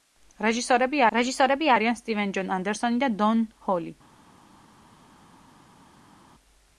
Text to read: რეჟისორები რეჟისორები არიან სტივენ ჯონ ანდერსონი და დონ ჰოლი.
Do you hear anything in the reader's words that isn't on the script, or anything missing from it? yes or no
no